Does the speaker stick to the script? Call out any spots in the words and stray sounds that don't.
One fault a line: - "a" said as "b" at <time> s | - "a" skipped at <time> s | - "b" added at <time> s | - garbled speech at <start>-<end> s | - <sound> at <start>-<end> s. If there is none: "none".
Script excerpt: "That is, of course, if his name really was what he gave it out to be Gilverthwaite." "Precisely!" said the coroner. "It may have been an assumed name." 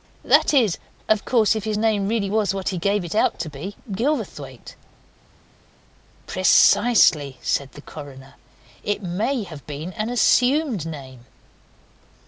none